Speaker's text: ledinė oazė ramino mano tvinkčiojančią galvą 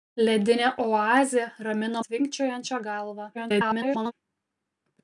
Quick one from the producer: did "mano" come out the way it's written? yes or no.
no